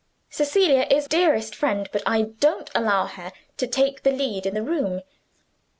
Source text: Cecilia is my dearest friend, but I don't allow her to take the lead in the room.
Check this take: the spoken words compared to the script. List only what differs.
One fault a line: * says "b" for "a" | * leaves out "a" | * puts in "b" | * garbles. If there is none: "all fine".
* leaves out "my"